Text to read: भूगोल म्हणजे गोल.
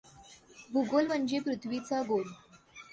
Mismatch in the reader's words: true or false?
true